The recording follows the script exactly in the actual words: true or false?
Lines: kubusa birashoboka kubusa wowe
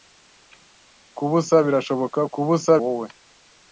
true